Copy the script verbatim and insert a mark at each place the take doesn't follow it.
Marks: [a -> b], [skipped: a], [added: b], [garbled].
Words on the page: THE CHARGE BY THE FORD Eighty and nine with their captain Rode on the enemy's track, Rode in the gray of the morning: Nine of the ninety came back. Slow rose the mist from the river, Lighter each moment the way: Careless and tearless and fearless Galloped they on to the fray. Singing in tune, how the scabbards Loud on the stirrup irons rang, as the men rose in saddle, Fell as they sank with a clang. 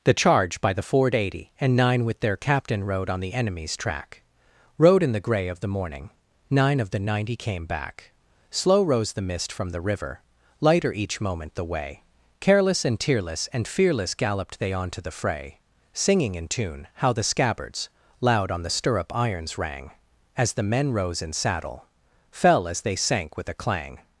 THE CHARGE BY THE FORD Eighty and nine with their captain Rode on the enemy's track, Rode in the gray of the morning: Nine of the ninety came back. Slow rose the mist from the river, Lighter each moment the way: Careless and tearless and fearless Galloped they on to the fray. Singing in tune, how the scabbards Loud on the stirrup irons rang, as the men rose in saddle, Fell as they sank with a clang.